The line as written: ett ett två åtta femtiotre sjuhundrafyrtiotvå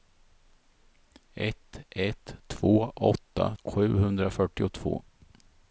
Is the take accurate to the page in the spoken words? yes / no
no